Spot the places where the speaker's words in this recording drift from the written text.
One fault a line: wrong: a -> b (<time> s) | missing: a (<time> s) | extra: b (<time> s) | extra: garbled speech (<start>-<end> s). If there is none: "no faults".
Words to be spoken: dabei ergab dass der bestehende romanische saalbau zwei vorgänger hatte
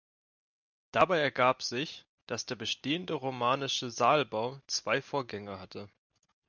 extra: sich (1.6 s)